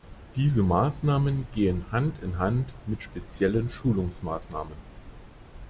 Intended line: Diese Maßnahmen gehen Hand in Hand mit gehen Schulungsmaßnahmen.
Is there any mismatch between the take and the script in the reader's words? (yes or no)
yes